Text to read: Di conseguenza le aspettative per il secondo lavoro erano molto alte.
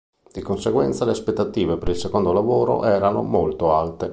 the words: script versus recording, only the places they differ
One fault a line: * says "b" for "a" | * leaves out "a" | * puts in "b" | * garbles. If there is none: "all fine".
all fine